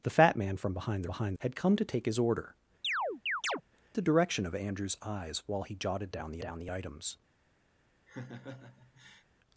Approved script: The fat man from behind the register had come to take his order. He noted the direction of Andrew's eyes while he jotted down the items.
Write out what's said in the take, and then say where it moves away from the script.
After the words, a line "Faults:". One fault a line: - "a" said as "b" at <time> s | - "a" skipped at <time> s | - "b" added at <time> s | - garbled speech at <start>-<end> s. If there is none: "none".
The fat man from behind the behind had come to take his order. The direction of Andrew's eyes while he jotted down the down the items.
Faults:
- "register" said as "behind" at 1.1 s
- "He noted" skipped at 2.6 s
- "down the" added at 6.4 s